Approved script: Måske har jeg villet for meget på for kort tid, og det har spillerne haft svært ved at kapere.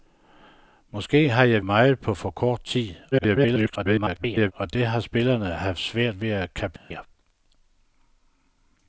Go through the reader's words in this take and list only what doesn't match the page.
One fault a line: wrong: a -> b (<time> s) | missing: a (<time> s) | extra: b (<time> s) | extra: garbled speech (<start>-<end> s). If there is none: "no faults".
missing: villet for (1.6 s)
extra: garbled speech (3.1-4.5 s)